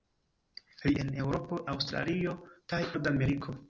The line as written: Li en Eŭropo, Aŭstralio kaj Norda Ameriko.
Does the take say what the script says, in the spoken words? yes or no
yes